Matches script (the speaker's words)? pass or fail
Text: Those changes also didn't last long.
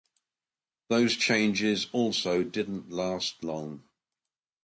pass